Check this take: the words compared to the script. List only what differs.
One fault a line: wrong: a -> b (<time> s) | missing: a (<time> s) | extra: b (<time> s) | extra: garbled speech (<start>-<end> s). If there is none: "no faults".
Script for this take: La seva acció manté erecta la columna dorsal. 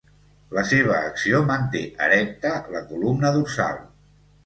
no faults